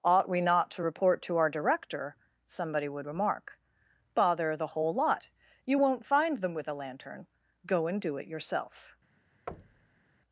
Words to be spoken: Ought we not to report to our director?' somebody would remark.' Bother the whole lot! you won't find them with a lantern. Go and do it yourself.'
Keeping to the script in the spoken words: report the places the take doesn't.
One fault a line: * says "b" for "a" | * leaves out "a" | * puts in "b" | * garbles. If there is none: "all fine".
all fine